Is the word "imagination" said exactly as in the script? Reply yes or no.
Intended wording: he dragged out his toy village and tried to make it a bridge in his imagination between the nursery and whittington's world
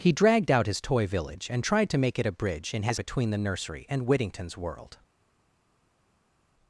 no